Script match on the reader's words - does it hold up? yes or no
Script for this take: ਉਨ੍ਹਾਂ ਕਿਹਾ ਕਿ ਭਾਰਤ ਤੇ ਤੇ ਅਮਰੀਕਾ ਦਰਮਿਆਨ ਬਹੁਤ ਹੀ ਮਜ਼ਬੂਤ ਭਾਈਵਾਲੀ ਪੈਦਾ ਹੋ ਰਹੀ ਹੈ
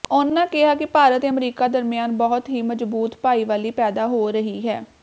no